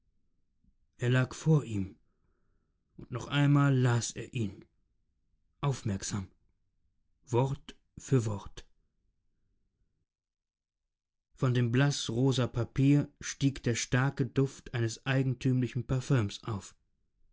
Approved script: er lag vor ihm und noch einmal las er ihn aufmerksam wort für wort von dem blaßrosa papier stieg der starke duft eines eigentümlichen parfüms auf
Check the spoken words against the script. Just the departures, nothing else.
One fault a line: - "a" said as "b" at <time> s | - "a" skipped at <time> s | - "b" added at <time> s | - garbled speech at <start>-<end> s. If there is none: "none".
none